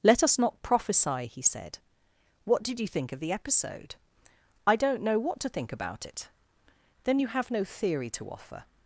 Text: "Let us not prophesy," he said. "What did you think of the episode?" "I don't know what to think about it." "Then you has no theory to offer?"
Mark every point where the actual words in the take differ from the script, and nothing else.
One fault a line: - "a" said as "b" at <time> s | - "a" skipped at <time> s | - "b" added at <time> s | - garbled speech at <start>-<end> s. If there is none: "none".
- "has" said as "have" at 7.3 s